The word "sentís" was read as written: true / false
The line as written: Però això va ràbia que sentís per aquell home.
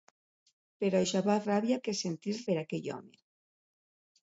true